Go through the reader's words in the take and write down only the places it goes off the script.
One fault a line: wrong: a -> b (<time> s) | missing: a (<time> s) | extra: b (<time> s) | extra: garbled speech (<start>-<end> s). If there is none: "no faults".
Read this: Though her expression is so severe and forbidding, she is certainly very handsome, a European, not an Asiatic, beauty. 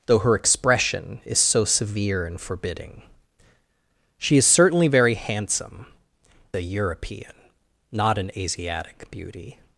no faults